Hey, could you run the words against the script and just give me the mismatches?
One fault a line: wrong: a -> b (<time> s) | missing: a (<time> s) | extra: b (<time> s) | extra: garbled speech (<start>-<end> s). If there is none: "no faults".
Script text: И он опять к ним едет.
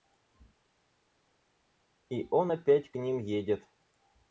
no faults